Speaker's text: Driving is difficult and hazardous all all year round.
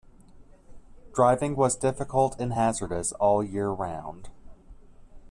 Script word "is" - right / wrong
wrong